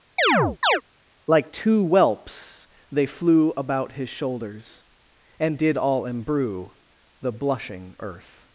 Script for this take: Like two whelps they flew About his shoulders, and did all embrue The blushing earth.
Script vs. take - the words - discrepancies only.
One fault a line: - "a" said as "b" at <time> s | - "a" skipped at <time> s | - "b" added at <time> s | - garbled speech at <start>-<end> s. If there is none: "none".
none